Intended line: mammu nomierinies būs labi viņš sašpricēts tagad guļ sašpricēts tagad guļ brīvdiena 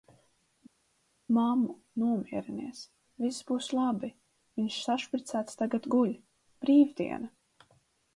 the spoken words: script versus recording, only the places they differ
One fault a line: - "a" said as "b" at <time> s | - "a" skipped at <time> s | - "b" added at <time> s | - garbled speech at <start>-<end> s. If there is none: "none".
- "viss" added at 3.2 s
- "sašpricēts tagad guļ" skipped at 6.1 s